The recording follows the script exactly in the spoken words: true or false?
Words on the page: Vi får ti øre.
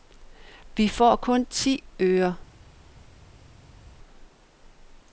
false